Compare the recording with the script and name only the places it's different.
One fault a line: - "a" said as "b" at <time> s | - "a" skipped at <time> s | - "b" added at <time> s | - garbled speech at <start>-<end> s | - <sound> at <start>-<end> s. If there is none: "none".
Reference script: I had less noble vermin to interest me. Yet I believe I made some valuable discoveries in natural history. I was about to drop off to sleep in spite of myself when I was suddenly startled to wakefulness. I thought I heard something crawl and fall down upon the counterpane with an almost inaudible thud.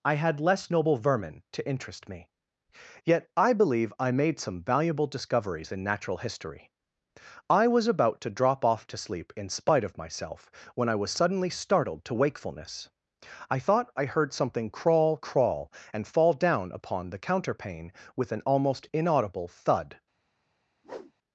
- "crawl" added at 15.2 s
- whoosh at 20.8-21.1 s